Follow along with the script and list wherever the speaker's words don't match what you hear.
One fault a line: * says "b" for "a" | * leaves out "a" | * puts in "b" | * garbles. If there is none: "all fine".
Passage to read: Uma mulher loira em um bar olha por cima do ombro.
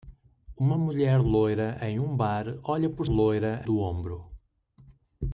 * says "loira" for "cima"